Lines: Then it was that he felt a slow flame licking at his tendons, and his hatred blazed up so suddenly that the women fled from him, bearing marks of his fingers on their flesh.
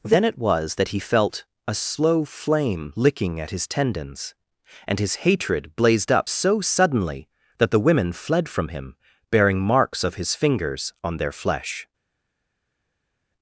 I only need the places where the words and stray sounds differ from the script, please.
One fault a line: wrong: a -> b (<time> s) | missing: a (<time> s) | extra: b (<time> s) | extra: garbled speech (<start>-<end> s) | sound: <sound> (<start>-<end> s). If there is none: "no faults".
no faults